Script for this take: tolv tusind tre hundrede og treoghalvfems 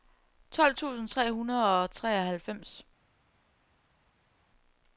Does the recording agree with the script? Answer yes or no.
yes